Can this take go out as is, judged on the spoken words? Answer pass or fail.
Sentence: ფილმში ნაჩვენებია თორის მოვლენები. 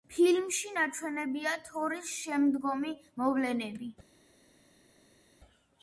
fail